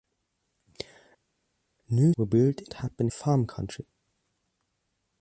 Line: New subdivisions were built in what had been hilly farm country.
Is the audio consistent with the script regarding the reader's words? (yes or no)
no